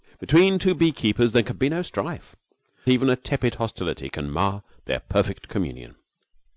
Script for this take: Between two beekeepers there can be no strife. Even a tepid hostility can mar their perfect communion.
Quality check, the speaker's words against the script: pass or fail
pass